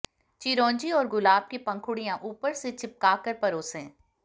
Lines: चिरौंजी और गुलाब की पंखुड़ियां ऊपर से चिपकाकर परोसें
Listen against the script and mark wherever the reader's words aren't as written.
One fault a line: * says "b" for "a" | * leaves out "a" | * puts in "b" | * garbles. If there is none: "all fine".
all fine